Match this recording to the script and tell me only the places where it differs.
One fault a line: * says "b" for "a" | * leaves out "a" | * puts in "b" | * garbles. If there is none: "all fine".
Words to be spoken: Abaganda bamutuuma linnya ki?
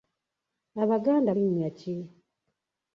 * leaves out "bamutuuma"